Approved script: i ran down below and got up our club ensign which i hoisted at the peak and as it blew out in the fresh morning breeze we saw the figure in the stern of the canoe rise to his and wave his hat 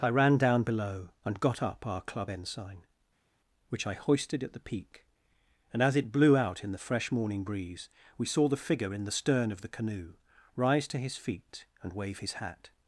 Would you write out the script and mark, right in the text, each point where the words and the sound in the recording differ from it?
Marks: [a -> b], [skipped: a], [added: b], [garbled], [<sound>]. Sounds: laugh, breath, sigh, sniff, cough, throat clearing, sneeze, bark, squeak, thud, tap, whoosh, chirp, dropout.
i ran down below and got up our club ensign which i hoisted at the peak and as it blew out in the fresh morning breeze we saw the figure in the stern of the canoe rise to his [added: feet] and wave his hat